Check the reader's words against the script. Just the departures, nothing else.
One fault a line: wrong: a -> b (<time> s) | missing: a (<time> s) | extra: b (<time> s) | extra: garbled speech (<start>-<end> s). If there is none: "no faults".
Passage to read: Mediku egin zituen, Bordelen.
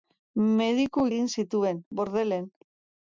no faults